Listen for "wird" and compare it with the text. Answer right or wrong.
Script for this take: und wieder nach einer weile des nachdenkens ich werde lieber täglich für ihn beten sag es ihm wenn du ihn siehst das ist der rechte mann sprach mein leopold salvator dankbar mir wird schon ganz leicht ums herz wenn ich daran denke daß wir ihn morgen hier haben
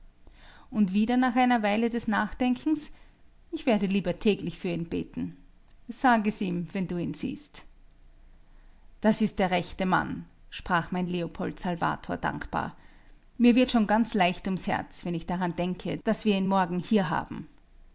right